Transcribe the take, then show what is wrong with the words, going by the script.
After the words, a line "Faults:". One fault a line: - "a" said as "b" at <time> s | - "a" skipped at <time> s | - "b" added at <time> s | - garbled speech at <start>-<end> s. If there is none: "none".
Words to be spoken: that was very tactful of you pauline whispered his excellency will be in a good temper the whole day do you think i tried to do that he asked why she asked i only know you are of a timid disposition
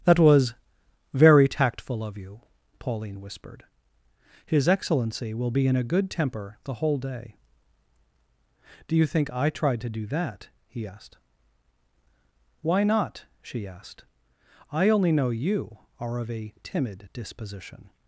that was very tactful of you pauline whispered his excellency will be in a good temper the whole day do you think i tried to do that he asked why not she asked i only know you are of a timid disposition
Faults:
- "not" added at 12.8 s